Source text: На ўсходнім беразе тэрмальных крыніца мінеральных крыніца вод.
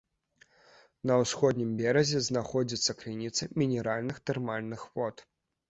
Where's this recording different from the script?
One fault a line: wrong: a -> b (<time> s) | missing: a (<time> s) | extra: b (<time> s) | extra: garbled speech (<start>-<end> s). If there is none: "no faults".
wrong: тэрмальных -> знаходзіцца (2.3 s)
wrong: крыніца -> тэрмальных (4.3 s)